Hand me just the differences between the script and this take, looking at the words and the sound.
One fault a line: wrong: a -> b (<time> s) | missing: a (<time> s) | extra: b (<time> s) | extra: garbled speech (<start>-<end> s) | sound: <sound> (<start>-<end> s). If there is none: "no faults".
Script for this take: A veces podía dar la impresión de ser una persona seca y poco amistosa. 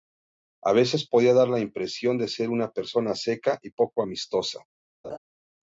sound: laugh (5.0-5.2 s)